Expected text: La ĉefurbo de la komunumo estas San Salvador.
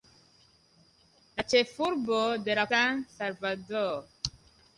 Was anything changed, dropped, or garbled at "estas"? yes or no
yes